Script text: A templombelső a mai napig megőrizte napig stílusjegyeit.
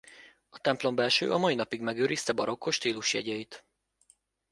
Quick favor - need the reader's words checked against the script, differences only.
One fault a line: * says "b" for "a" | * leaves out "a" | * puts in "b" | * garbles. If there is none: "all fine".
* says "barokkos" for "napig"